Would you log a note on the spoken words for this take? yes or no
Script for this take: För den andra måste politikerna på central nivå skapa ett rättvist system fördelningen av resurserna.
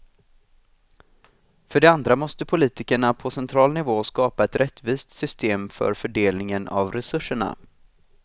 yes